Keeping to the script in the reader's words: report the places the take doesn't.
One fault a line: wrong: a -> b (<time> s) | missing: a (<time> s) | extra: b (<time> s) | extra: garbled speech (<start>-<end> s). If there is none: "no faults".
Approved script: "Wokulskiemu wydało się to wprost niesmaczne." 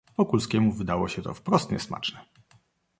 no faults